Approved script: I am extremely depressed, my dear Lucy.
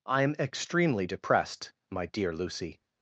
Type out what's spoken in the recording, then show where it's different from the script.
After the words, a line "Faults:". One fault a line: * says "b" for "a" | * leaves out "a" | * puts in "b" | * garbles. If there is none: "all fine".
I am extremely depressed, my dear Lucy.
Faults:
all fine